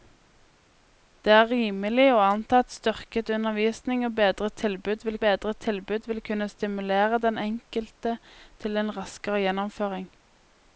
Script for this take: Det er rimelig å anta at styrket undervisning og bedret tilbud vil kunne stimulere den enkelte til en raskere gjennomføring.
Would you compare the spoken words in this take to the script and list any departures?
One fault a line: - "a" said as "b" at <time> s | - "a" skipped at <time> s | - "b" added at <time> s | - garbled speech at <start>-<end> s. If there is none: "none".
- "bedret tilbud vil" added at 5.3 s